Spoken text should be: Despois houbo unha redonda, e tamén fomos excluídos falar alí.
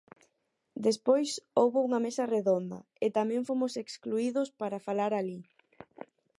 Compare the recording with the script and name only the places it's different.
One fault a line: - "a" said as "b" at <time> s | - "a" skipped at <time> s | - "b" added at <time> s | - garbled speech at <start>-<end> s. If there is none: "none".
- "mesa" added at 2.0 s
- "para" added at 4.6 s